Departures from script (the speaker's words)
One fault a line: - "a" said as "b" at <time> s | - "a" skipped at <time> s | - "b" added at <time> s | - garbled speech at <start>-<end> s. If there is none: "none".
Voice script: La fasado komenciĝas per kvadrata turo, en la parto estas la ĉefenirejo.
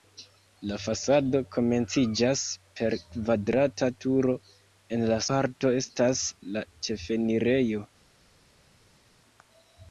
none